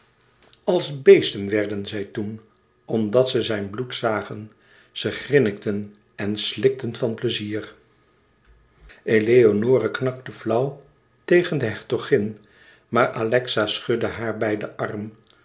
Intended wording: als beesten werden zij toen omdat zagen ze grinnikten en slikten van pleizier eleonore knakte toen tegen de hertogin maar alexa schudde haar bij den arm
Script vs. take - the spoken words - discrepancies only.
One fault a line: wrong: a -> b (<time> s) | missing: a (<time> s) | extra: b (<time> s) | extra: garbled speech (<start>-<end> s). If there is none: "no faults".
extra: ze zijn bloed (3.3 s)
wrong: toen -> flauw (10.3 s)